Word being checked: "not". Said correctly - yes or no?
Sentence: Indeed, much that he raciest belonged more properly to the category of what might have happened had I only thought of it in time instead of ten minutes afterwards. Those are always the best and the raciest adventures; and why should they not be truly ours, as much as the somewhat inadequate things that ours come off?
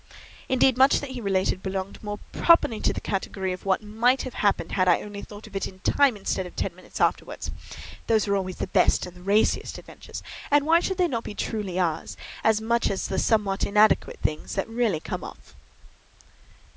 yes